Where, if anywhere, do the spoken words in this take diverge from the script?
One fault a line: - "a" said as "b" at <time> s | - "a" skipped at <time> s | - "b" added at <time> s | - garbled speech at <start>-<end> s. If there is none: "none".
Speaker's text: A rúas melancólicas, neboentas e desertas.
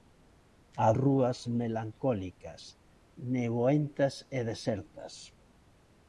none